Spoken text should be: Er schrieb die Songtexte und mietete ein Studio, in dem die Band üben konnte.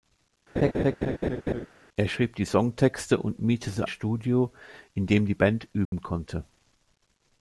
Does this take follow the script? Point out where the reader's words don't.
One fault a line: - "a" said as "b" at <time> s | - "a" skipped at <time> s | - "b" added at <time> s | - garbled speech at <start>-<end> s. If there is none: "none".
- "ein" skipped at 3.9 s